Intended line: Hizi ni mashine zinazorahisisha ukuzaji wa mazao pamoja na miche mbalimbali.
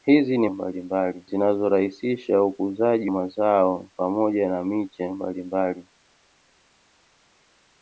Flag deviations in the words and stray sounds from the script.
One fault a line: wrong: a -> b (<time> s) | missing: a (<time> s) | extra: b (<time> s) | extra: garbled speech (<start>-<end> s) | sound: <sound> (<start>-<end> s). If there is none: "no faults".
wrong: mashine -> mbalimbali (0.5 s)
missing: wa (3.1 s)